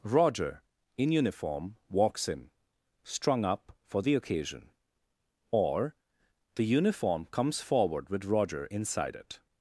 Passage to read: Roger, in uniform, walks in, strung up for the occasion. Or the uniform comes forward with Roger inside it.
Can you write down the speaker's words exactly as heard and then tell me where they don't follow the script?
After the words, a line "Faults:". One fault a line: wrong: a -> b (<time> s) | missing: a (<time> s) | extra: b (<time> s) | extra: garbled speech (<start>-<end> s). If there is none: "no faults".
Roger, in uniform, walks in, strung up for the occasion. Or the uniform comes forward with Roger inside it.
Faults:
no faults